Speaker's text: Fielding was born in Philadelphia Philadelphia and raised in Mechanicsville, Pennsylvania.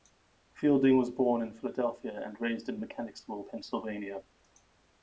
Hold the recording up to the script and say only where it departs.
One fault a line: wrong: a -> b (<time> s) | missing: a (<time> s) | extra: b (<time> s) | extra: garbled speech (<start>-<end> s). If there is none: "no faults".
missing: Philadelphia (2.3 s)